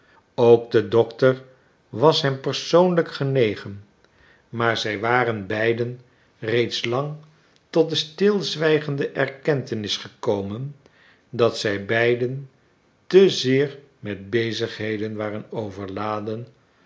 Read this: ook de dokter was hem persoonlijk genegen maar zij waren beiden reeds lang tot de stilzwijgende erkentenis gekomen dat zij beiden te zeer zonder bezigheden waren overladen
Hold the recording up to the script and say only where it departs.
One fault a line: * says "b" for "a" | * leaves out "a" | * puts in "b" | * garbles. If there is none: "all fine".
* says "met" for "zonder"